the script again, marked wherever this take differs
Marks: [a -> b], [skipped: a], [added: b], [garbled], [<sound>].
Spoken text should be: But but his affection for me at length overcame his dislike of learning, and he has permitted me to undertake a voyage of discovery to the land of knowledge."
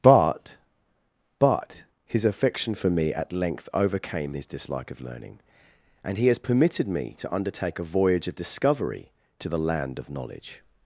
But but his affection for me at length overcame his dislike of learning, and he has permitted me to undertake a voyage of discovery to the land of knowledge."